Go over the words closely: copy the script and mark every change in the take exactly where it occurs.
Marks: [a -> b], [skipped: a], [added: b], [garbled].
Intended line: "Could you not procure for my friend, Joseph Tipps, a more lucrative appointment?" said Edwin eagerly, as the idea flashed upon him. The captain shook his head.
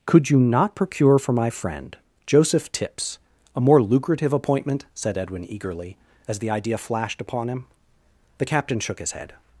"Could you not procure for my friend, Joseph Tipps, a more lucrative appointment?" said Edwin eagerly, as the idea flashed upon him. The captain shook his head.